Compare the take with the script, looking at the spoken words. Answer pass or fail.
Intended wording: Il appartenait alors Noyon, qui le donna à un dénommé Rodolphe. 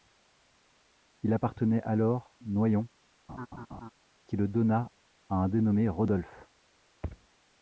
pass